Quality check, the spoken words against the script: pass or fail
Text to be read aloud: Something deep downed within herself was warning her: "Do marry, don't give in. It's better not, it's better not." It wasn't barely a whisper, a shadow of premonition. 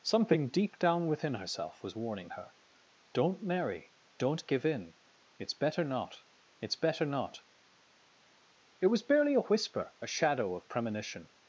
fail